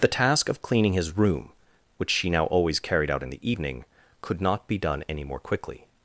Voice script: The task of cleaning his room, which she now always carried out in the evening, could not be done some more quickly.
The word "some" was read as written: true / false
false